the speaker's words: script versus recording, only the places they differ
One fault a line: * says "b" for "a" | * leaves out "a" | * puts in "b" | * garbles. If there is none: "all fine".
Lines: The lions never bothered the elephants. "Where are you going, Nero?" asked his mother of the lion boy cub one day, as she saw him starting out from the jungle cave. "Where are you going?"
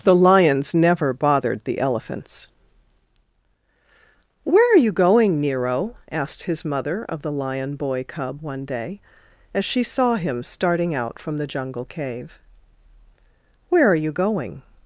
all fine